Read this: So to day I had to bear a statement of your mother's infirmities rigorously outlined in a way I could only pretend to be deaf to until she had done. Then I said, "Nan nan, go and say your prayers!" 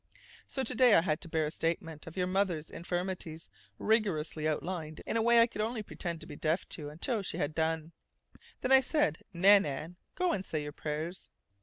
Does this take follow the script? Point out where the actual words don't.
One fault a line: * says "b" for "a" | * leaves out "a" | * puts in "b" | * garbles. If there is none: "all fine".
all fine